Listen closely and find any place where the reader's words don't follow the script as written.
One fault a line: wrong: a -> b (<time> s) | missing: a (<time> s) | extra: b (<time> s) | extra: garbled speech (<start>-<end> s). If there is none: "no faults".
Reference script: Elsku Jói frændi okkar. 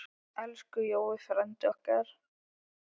no faults